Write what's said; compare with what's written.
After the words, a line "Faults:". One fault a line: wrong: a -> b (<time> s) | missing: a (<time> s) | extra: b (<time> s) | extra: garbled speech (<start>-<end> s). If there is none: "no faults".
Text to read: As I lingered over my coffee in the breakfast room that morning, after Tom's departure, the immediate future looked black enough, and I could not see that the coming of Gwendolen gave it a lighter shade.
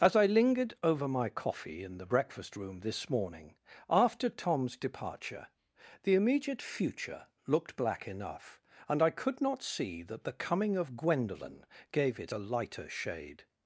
As I lingered over my coffee in the breakfast room this morning, after Tom's departure, the immediate future looked black enough, and I could not see that the coming of Gwendolen gave it a lighter shade.
Faults:
wrong: that -> this (2.8 s)